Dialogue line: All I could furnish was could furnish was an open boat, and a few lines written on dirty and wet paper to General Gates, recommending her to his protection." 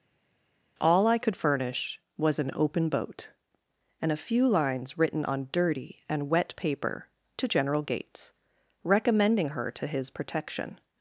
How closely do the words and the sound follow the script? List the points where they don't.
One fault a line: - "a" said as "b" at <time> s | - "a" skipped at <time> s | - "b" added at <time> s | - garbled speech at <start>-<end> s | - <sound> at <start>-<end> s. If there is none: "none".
- "could furnish was" skipped at 2.4 s